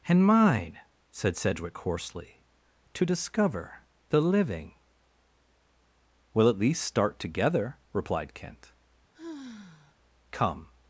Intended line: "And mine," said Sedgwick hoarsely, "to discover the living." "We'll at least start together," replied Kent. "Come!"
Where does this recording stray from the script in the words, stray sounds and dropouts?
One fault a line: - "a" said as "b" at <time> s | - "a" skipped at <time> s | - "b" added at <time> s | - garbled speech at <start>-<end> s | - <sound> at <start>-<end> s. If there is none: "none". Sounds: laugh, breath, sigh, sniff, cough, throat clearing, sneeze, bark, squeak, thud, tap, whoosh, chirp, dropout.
- sigh at 9.1-9.9 s